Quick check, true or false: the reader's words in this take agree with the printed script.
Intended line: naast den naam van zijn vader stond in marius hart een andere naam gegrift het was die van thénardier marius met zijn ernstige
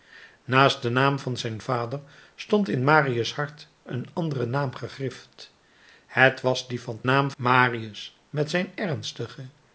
false